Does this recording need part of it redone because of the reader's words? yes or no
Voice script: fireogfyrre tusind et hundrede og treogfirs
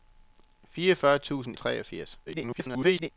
yes